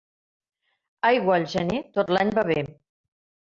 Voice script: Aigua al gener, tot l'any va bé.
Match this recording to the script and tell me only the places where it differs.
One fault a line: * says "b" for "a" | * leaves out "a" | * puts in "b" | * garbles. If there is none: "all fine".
all fine